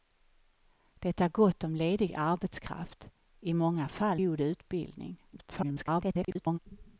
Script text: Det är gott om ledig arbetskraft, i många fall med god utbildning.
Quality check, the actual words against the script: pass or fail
fail